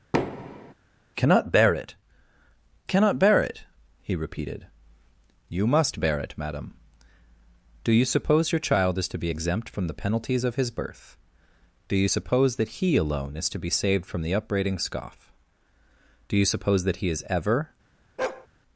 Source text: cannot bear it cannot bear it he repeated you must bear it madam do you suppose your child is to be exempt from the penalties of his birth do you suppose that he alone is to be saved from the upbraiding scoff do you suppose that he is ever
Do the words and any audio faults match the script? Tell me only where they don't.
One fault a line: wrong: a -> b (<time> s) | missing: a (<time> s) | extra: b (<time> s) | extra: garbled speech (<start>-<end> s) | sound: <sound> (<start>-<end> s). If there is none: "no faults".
sound: thud (0.1-0.7 s)
sound: bark (18.2-18.5 s)